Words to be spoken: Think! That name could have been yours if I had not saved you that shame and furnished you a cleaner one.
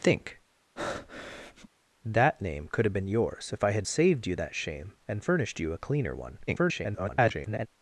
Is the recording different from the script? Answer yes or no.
yes